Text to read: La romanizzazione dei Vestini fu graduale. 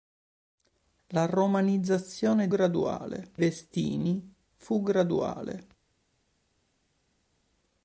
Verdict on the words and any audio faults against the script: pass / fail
fail